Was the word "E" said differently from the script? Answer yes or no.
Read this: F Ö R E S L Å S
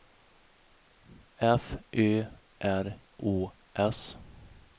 yes